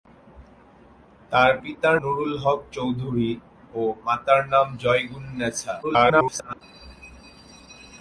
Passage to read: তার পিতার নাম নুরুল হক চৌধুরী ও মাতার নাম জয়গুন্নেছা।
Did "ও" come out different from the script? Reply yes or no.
no